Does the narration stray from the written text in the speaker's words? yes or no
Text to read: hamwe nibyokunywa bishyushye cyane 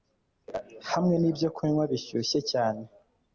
no